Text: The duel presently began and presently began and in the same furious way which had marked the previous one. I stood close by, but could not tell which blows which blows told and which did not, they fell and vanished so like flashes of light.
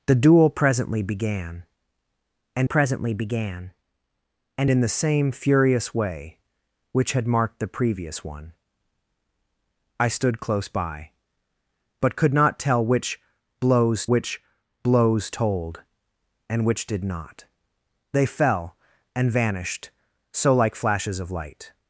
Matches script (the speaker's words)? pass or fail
pass